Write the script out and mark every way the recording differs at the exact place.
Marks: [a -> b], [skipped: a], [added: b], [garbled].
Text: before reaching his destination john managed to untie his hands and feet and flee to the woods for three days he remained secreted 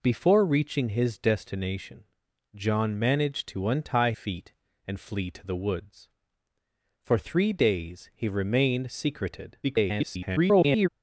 before reaching his destination john managed to untie [skipped: his hands and] feet and flee to the woods for three days he remained secreted [garbled]